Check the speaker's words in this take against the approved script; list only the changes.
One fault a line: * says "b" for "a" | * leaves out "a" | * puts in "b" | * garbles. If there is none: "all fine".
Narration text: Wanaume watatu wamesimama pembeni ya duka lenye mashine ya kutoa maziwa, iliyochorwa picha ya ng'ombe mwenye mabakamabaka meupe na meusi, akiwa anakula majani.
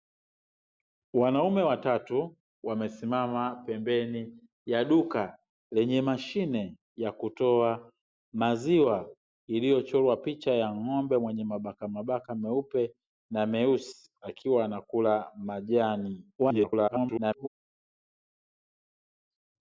* garbles